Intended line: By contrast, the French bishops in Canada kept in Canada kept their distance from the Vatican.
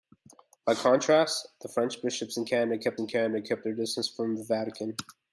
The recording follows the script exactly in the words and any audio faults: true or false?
true